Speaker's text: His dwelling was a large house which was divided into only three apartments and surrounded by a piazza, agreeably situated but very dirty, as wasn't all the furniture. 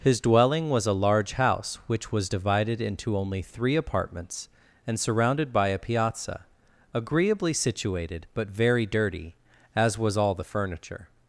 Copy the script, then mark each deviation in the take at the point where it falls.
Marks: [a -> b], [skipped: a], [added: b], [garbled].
His dwelling was a large house which was divided into only three apartments and surrounded by a piazza, agreeably situated but very dirty, as [wasn't -> was] all the furniture.